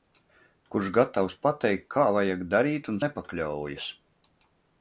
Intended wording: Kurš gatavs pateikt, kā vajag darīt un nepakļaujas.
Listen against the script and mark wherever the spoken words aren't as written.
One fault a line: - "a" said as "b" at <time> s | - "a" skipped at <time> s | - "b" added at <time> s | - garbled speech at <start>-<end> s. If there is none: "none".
none